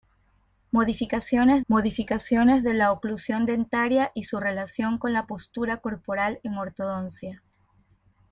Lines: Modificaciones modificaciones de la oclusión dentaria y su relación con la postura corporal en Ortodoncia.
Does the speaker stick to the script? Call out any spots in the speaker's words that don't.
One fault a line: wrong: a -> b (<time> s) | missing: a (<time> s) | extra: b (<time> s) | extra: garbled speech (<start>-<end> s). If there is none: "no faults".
no faults